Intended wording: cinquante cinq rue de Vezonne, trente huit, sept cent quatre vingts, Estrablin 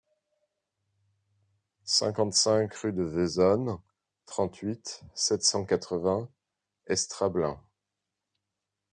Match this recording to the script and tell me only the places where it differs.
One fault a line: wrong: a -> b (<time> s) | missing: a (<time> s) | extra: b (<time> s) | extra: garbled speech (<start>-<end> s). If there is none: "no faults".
no faults